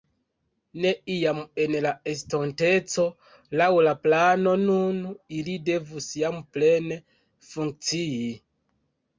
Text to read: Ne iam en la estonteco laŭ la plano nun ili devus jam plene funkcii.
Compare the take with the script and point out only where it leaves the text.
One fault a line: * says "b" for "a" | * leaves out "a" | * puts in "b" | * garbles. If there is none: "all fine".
all fine